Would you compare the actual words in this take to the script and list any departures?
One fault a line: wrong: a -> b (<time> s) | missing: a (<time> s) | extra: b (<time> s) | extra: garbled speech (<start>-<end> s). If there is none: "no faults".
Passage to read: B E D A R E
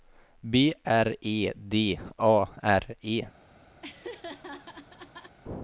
extra: R (0.8 s)